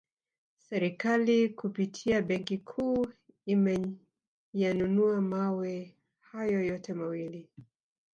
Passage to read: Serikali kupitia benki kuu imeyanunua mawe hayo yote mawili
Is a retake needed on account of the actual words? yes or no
no